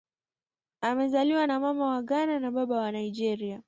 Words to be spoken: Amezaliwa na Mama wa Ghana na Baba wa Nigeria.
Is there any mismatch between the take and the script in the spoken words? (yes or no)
no